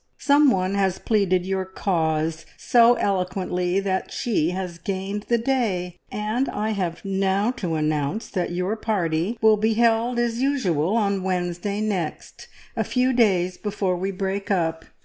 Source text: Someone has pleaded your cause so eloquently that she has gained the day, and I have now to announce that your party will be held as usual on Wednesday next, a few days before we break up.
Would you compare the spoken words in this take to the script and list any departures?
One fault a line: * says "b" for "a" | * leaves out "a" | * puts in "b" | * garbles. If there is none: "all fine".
all fine